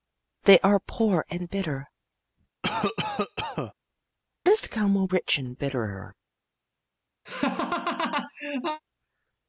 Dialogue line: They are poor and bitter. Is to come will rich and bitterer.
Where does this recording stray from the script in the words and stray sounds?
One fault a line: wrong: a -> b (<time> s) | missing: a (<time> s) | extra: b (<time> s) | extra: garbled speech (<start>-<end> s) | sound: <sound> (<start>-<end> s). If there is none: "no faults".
sound: cough (2.6-3.7 s)
sound: laugh (7.3-8.8 s)